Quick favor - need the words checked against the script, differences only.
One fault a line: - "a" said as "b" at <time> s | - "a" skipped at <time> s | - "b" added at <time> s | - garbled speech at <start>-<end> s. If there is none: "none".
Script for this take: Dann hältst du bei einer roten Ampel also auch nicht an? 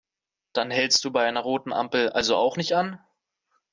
none